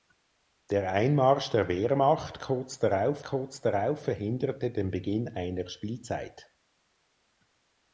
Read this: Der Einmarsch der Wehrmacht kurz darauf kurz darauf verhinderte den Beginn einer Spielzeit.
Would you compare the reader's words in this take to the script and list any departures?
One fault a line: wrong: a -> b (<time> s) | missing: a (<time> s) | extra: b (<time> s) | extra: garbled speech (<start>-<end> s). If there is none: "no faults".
no faults